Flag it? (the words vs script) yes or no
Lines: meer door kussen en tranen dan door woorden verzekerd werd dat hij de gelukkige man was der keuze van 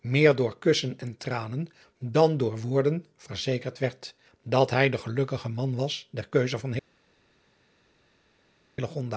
no